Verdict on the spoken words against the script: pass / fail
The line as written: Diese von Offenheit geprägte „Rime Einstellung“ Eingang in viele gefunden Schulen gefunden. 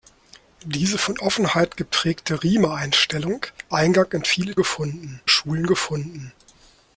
pass